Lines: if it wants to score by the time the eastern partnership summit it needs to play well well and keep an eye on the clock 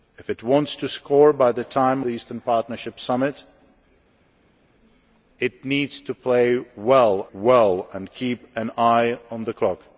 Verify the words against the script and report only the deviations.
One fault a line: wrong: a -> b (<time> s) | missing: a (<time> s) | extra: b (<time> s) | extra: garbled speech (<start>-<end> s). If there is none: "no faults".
no faults